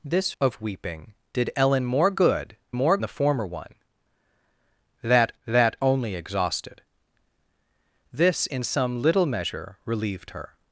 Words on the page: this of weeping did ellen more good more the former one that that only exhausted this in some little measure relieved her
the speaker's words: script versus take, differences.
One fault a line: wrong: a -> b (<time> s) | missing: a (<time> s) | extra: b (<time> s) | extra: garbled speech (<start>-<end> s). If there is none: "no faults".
no faults